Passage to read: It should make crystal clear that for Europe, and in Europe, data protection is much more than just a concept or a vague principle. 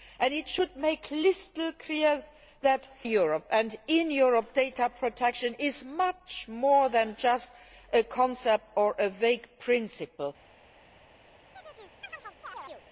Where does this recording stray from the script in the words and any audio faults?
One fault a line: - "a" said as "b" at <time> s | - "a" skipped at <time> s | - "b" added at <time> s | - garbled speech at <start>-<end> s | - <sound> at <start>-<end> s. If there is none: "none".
- "for" skipped at 2.9 s
- chirp at 11.5-12.9 s